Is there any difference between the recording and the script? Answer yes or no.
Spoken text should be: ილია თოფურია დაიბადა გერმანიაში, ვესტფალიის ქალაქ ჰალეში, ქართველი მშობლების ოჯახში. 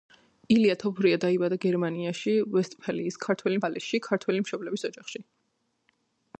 yes